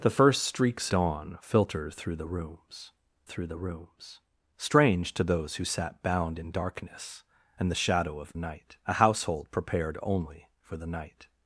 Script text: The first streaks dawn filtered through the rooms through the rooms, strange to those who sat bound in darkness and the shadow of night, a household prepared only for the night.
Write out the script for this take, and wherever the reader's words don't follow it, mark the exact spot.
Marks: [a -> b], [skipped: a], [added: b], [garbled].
The first streaks dawn filtered through the rooms through the rooms, strange to those who sat bound in darkness and the shadow of night, a household prepared only for the night.